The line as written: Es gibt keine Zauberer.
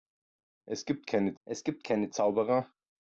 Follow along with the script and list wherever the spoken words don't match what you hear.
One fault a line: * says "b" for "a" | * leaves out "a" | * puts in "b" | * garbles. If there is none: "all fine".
* puts in "es gibt keine"